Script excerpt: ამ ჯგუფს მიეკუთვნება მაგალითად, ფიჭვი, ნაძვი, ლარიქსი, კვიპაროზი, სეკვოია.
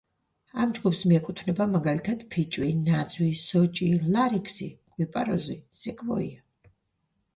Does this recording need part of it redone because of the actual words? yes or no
yes